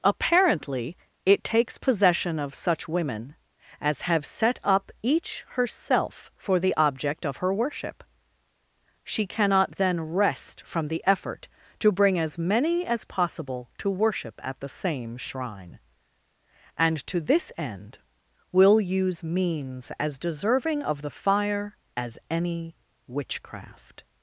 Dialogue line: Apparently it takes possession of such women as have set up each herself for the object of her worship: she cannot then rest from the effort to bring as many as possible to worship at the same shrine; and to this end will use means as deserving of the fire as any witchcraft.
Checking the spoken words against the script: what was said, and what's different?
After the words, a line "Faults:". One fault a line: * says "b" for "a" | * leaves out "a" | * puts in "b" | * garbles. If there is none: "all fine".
Apparently it takes possession of such women as have set up each herself for the object of her worship: she cannot then rest from the effort to bring as many as possible to worship at the same shrine; and to this end will use means as deserving of the fire as any witchcraft.
Faults:
all fine